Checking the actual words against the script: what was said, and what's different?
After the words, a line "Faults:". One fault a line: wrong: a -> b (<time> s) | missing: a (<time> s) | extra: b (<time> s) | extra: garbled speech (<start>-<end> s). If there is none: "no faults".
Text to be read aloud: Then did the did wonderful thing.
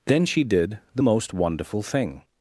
Then she did the most wonderful thing.
Faults:
extra: she (0.2 s)
wrong: did -> most (1.0 s)